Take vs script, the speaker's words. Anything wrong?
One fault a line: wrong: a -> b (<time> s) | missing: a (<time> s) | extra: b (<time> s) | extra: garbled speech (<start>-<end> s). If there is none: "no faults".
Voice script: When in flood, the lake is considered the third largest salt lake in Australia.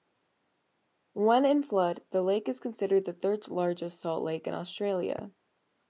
no faults